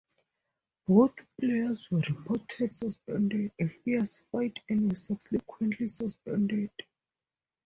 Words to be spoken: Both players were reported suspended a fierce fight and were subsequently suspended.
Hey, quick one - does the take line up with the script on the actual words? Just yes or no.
yes